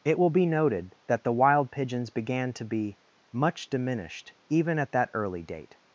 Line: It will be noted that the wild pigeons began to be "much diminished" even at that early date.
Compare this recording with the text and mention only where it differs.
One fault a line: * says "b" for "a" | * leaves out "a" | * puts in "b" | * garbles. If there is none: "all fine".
all fine